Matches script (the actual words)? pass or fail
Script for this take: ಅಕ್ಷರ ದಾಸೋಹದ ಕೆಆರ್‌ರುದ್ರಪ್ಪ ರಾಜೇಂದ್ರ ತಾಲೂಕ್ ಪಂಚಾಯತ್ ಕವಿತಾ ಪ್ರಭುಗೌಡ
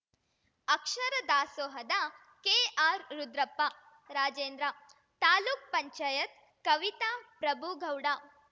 pass